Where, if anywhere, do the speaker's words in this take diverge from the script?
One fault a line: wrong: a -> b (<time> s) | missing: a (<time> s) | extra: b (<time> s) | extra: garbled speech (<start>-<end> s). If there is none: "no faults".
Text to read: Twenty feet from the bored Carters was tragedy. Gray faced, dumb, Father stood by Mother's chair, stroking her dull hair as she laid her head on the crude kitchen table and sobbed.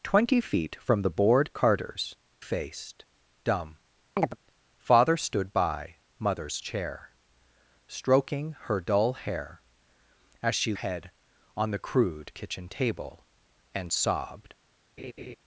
missing: was tragedy Gray (2.1 s)
missing: laid her (10.7 s)